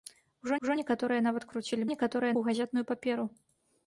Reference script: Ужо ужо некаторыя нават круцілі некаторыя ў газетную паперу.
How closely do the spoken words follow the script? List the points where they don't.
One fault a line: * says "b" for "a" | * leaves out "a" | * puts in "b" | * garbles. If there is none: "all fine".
all fine